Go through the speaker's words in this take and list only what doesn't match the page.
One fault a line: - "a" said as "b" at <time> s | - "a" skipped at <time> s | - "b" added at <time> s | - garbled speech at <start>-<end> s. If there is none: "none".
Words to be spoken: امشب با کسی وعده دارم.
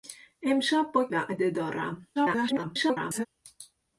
- "کسی" skipped at 1.1 s
- garbled speech at 2.2-3.3 s